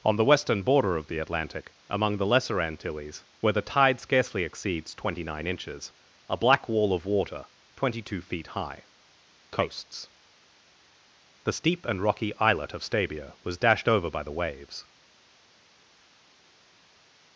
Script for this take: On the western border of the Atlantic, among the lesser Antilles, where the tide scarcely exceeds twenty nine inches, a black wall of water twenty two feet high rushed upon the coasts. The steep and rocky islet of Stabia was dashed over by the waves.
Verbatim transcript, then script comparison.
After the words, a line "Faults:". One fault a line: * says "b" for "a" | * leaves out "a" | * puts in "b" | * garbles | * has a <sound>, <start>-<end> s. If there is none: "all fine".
On the western border of the Atlantic, among the lesser Antilles, where the tide scarcely exceeds twenty nine inches, a black wall of water twenty two feet high coasts. The steep and rocky islet of Stabia was dashed over by the waves.
Faults:
* leaves out "rushed upon the"